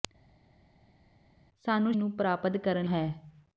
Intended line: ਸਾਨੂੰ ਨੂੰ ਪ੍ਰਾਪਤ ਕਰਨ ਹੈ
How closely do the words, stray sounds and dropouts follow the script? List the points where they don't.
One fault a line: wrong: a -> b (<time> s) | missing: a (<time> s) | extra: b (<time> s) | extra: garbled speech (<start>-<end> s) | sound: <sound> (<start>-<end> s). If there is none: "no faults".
no faults